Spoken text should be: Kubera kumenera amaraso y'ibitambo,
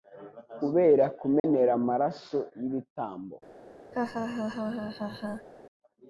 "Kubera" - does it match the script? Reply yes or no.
yes